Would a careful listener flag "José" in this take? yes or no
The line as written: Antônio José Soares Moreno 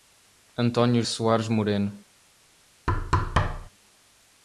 yes